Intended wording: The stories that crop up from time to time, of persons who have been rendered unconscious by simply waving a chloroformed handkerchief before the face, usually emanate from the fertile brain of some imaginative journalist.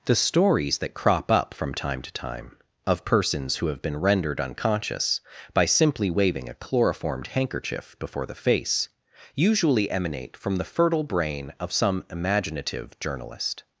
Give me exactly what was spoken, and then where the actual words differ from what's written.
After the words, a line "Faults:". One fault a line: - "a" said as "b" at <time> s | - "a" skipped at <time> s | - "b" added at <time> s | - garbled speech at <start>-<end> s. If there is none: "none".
The stories that crop up from time to time, of persons who have been rendered unconscious by simply waving a chloroformed handkerchief before the face, usually emanate from the fertile brain of some imaginative journalist.
Faults:
none